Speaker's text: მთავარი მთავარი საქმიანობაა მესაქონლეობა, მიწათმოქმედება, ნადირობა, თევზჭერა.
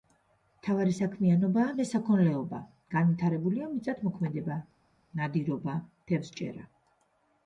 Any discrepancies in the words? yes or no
yes